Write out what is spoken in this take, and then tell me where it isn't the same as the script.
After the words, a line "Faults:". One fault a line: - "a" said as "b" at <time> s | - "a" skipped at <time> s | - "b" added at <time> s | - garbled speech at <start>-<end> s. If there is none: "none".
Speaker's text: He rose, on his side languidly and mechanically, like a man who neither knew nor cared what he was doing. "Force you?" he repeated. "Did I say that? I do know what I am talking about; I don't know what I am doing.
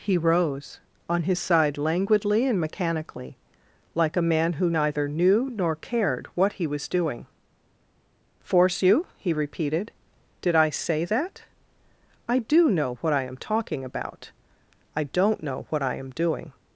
He rose, on his side languidly and mechanically, like a man who neither knew nor cared what he was doing. "Force you?" he repeated. "Did I say that? I do know what I am talking about; I don't know what I am doing.
Faults:
none